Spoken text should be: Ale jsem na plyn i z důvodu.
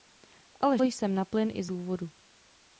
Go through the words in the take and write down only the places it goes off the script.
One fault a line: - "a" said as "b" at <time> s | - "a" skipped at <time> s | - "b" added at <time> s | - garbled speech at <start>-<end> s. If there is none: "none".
none